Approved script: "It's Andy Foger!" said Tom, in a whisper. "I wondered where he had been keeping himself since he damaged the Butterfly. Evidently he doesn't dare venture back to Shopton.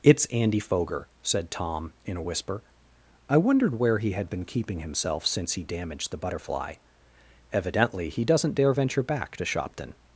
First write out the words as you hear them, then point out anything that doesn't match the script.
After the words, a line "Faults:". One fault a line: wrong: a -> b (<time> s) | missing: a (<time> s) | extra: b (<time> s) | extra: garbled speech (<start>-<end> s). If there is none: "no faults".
"It's Andy Foger!" said Tom, in a whisper. "I wondered where he had been keeping himself since he damaged the Butterfly. Evidently he doesn't dare venture back to Shopton.
Faults:
no faults